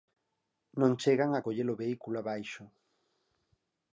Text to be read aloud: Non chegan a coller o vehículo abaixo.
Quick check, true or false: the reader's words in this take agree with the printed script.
true